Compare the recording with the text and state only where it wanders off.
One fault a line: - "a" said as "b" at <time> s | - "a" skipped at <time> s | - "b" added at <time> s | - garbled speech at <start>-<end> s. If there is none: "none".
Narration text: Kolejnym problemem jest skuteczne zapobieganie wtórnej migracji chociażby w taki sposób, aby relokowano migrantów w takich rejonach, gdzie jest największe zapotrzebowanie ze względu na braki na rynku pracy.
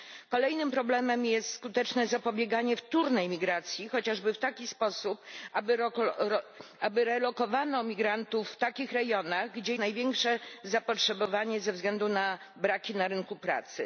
- "jest" skipped at 9.8 s